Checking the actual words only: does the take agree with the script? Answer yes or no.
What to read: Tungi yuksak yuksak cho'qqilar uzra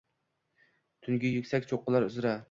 no